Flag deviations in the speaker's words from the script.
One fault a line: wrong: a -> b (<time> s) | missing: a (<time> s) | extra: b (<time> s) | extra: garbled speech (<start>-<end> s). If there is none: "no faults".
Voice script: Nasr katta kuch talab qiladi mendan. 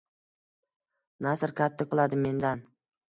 missing: kuch talab (1.9 s)